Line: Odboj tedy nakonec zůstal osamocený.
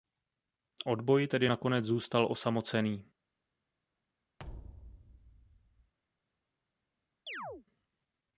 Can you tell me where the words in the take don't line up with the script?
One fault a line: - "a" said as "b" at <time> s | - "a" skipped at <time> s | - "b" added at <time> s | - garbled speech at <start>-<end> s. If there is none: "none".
none